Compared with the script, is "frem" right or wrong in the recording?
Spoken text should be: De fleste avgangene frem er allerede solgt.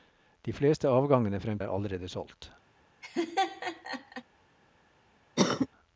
right